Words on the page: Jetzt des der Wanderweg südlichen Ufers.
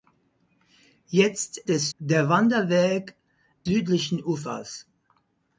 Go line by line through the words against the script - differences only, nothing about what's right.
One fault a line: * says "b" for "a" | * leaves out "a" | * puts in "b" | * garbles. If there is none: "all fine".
all fine